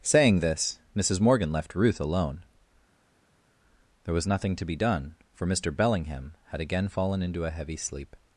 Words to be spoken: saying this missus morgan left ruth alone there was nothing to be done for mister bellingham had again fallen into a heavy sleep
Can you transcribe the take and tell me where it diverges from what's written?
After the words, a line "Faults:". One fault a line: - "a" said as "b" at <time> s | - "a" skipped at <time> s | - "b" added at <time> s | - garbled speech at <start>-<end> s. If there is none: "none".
saying this missus morgan left ruth alone there was nothing to be done for mister bellingham had again fallen into a heavy sleep
Faults:
none